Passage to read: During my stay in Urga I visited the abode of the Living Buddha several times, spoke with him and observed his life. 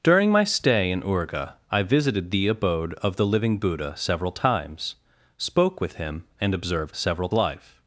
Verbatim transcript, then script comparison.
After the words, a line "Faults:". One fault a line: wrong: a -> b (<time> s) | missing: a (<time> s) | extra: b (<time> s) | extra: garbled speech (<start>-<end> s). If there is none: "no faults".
During my stay in Urga I visited the abode of the Living Buddha several times, spoke with him and observed several life.
Faults:
wrong: his -> several (6.9 s)